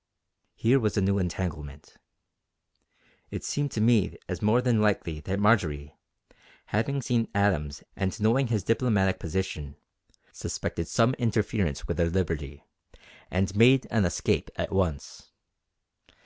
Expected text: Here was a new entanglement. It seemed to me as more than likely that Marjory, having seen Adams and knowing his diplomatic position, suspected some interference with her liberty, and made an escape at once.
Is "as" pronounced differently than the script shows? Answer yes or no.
no